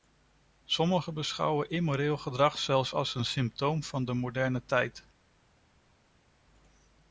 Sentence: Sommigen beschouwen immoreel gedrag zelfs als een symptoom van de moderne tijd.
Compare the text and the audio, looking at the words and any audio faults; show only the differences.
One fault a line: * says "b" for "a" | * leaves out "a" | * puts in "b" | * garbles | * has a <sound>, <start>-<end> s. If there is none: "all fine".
all fine